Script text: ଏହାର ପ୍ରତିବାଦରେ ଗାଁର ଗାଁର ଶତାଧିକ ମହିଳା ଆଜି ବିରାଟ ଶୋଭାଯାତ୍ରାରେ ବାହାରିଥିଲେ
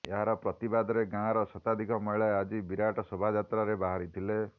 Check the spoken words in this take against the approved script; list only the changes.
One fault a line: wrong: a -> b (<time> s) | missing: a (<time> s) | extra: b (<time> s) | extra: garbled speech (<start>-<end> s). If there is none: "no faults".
missing: ଗାଁର (1.4 s)